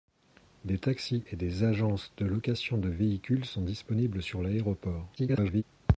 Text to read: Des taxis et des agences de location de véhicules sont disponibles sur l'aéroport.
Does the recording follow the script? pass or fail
fail